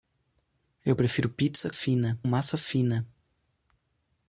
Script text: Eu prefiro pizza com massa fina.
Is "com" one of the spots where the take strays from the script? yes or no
yes